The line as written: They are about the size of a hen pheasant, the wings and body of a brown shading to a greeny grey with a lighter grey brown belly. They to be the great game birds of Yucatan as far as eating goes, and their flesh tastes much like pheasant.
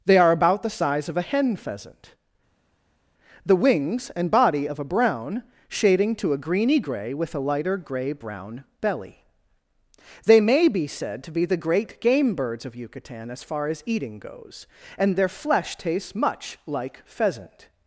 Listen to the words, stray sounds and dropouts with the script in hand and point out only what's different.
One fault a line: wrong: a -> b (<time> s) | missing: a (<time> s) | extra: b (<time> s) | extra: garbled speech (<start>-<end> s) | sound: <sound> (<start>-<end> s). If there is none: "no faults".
extra: may be said (10.4 s)